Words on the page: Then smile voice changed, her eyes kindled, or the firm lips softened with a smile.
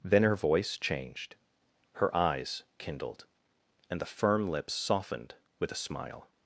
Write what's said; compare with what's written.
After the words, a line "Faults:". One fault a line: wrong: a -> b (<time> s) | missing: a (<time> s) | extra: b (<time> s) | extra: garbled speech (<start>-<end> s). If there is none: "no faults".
Then her voice changed, her eyes kindled, and the firm lips softened with a smile.
Faults:
wrong: smile -> her (0.2 s)
wrong: or -> and (3.9 s)